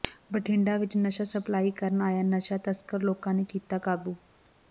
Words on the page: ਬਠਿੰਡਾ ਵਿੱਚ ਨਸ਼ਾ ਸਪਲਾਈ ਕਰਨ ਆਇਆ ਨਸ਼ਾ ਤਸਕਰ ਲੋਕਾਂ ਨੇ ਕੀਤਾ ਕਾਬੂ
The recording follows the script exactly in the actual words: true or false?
true